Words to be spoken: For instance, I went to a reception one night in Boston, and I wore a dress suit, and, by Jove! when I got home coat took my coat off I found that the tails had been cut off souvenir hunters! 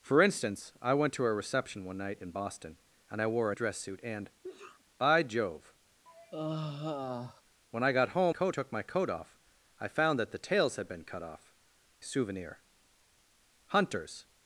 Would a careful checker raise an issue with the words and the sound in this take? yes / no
yes